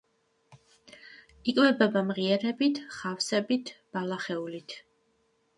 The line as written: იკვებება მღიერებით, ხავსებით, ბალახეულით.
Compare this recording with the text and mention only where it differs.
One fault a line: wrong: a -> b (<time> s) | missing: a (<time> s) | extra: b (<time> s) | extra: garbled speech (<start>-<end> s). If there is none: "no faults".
no faults